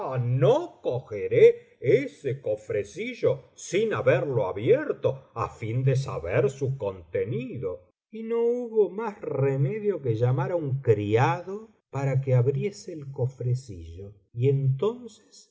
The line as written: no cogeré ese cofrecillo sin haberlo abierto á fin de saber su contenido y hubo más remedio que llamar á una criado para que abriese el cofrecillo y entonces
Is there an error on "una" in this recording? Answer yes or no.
yes